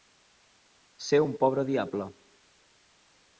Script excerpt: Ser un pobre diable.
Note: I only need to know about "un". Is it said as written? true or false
true